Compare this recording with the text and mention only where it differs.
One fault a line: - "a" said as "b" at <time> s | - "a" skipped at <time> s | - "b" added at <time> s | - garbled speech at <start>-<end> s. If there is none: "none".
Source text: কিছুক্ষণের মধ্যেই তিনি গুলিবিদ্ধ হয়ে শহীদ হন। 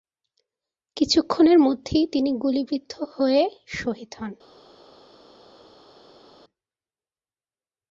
none